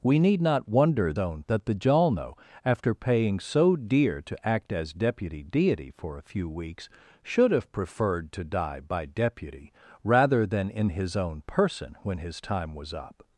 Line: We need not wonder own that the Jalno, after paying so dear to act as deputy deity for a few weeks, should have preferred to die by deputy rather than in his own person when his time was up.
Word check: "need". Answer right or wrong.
right